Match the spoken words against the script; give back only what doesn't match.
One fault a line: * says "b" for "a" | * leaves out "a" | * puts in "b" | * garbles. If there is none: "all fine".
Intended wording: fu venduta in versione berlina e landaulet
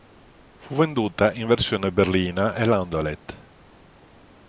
all fine